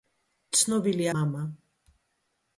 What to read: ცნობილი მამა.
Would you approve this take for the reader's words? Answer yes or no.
yes